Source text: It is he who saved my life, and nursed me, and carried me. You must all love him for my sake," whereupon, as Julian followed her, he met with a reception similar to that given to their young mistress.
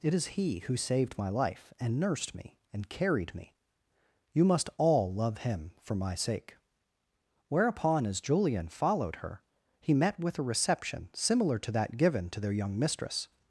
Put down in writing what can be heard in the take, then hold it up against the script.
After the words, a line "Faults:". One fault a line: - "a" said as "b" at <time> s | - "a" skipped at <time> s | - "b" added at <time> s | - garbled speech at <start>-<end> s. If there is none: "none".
It is he who saved my life, and nursed me, and carried me. You must all love him for my sake," whereupon, as Julian followed her, he met with a reception similar to that given to their young mistress.
Faults:
none